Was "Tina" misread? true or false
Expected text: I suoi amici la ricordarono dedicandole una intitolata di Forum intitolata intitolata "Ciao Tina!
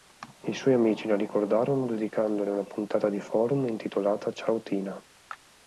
false